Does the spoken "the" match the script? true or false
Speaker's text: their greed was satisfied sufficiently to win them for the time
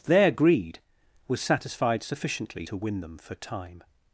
false